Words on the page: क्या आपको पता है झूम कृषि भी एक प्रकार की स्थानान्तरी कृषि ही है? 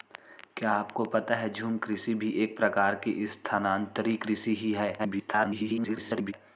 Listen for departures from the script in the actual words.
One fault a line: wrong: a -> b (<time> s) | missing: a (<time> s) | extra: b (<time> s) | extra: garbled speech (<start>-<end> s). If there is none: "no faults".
extra: garbled speech (5.0-6.3 s)